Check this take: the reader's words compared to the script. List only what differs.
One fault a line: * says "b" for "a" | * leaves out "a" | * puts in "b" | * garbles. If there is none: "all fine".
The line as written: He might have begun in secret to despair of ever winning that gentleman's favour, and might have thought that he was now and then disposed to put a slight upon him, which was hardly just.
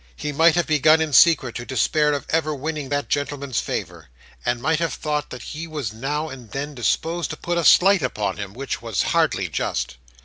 all fine